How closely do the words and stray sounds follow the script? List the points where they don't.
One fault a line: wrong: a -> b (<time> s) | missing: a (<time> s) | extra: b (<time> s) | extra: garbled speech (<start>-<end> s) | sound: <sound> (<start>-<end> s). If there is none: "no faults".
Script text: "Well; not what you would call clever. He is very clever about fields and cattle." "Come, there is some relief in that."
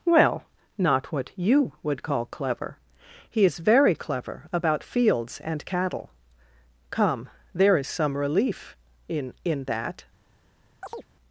extra: in (9.4 s)
sound: chirp (10.8-11.1 s)